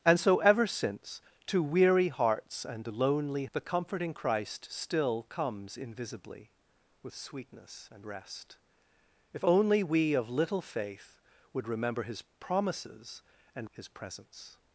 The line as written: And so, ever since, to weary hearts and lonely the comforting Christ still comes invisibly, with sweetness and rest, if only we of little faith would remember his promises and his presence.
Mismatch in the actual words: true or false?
false